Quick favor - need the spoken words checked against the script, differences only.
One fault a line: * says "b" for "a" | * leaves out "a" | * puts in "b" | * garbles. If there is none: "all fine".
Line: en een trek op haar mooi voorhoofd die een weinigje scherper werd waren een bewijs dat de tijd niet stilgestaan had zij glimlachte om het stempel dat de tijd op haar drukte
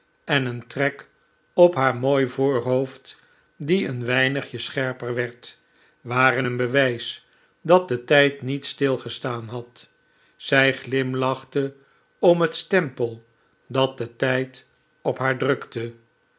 all fine